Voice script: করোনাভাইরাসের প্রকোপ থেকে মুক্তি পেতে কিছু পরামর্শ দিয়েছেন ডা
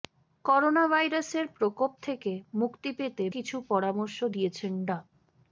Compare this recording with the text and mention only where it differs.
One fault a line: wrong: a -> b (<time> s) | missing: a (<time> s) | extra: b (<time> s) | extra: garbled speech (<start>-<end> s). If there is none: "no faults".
no faults